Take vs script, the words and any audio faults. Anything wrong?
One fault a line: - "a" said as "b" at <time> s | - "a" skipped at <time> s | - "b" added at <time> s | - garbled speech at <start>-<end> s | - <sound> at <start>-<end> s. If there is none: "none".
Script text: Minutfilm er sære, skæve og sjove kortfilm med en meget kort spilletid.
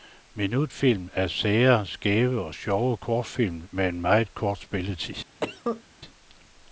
- cough at 5.4-5.8 s